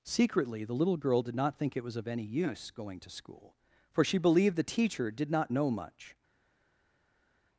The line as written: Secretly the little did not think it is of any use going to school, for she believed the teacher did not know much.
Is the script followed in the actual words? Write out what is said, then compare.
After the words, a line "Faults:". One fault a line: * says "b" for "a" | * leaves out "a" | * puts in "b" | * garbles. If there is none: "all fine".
Secretly the little girl did not think it was of any use going to school, for she believed the teacher did not know much.
Faults:
* puts in "girl"
* says "was" for "is"